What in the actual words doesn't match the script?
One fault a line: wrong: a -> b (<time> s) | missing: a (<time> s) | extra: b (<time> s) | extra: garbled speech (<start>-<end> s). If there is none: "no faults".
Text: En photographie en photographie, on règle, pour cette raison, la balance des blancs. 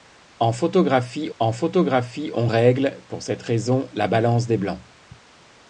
no faults